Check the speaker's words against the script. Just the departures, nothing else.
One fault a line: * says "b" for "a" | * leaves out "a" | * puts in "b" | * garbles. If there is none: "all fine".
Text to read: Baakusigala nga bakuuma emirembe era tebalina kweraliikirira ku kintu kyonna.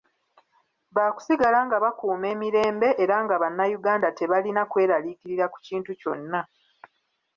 * puts in "nga bannayuganda"